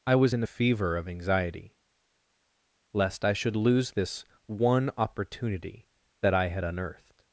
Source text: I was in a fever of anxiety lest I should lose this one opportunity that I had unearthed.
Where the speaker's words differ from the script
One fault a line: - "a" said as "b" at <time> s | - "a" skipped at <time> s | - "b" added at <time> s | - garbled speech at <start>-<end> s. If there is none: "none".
none